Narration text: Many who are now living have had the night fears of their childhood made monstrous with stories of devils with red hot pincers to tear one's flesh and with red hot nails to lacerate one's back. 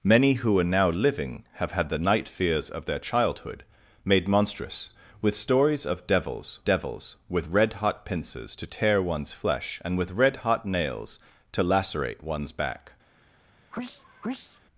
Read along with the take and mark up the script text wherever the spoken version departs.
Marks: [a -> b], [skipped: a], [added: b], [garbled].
Many who are now living have had the night fears of their childhood made monstrous with stories of devils [added: devils] with red hot pincers to tear one's flesh and with red hot nails to lacerate one's back.